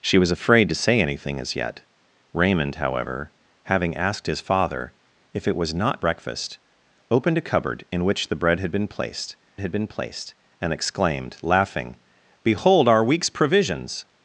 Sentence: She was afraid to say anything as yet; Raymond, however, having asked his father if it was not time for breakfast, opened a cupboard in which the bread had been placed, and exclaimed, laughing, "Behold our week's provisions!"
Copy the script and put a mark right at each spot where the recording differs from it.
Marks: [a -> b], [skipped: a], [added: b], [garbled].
She was afraid to say anything as yet; Raymond, however, having asked his father if it was not [skipped: time for] breakfast, opened a cupboard in which the bread had been placed, [added: had been placed] and exclaimed, laughing, "Behold our week's provisions!"